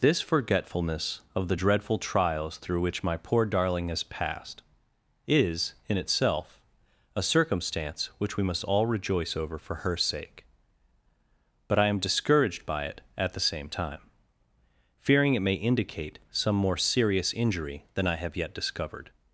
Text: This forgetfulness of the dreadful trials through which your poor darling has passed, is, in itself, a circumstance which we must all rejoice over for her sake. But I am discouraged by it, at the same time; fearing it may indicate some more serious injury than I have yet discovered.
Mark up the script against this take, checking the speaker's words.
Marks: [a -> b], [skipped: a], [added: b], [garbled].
This forgetfulness of the dreadful trials through which [your -> my] poor darling has passed, is, in itself, a circumstance which we must all rejoice over for her sake. But I am discouraged by it, at the same time; fearing it may indicate some more serious injury than I have yet discovered.